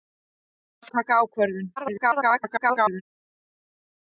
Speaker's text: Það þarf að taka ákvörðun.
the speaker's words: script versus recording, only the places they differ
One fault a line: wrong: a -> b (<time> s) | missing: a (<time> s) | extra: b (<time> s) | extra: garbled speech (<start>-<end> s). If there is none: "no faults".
missing: þarf (0.9 s)
extra: garbled speech (1.8-3.0 s)